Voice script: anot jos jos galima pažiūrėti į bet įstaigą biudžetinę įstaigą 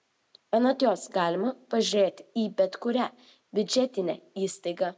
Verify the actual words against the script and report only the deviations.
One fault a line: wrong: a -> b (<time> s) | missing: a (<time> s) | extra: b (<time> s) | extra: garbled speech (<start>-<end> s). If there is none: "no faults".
missing: jos (1.0 s)
wrong: įstaigą -> kurią (2.9 s)